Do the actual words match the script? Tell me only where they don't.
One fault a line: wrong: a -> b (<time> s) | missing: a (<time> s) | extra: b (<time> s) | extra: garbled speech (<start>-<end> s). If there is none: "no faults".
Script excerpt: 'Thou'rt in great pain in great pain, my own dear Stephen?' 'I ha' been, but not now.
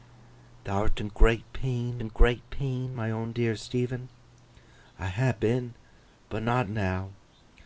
no faults